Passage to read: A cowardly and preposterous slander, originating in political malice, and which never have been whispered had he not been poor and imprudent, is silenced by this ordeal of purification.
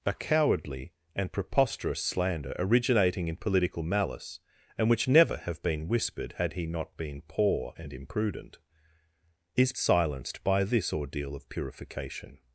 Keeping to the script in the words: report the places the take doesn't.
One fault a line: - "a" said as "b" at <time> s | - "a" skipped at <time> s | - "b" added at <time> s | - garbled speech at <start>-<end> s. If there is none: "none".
none